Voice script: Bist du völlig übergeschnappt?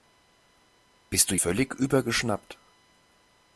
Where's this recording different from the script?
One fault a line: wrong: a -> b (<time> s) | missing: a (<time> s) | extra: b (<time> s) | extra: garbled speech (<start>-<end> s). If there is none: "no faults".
no faults